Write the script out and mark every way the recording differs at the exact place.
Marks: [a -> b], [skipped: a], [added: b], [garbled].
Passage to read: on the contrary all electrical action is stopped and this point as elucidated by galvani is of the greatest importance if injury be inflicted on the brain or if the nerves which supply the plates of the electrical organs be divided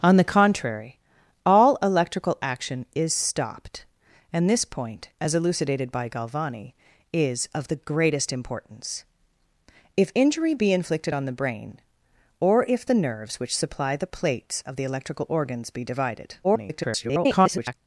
on the contrary all electrical action is stopped and this point as elucidated by galvani is of the greatest importance if injury be inflicted on the brain or if the nerves which supply the plates of the electrical organs be divided [garbled]